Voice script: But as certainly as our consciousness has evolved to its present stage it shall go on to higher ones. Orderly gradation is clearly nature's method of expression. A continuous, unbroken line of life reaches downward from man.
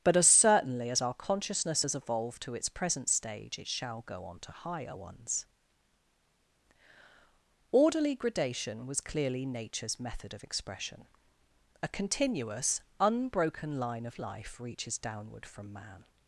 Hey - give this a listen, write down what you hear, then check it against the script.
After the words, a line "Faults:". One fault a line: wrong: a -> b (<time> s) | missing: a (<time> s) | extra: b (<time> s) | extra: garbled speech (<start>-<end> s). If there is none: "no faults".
But as certainly as our consciousness has evolved to its present stage it shall go on to higher ones. Orderly gradation was clearly nature's method of expression. A continuous, unbroken line of life reaches downward from man.
Faults:
wrong: is -> was (8.9 s)